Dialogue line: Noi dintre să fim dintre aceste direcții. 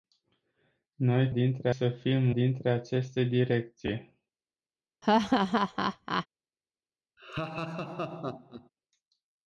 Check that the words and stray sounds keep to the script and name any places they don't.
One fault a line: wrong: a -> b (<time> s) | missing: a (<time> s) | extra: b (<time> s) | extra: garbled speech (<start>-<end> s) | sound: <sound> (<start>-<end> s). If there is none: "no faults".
sound: laugh (5.0-6.3 s)
sound: laugh (7.2-8.7 s)